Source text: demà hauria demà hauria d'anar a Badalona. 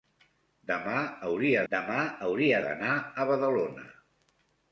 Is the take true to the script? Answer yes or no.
yes